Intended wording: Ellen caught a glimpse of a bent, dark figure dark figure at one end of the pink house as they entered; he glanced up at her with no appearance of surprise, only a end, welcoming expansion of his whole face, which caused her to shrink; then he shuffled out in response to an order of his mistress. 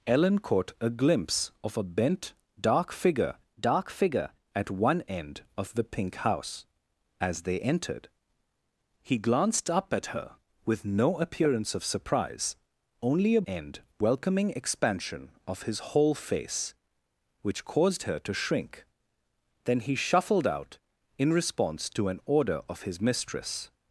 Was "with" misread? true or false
false